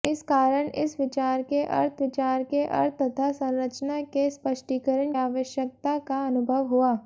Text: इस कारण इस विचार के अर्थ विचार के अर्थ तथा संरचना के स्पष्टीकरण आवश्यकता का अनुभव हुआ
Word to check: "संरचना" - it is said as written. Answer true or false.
true